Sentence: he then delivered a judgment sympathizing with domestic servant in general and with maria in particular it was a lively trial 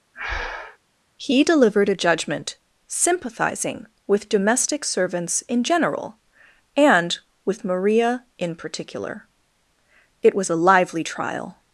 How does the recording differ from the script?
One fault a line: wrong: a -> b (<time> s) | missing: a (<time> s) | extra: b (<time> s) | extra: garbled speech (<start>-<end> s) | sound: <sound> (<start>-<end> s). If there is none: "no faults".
sound: breath (0.1-0.8 s)
missing: then (1.4 s)
wrong: servant -> servants (4.8 s)